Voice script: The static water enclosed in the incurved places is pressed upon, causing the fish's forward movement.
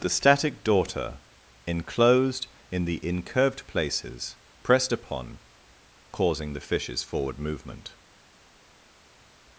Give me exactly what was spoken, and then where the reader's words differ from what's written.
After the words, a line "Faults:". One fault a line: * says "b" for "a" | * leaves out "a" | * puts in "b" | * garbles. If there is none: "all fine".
The static daughter enclosed in the incurved places pressed upon, causing the fish's forward movement.
Faults:
* says "daughter" for "water"
* leaves out "is"